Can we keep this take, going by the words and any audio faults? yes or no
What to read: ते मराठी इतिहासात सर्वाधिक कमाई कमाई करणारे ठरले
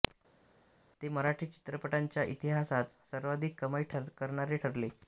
no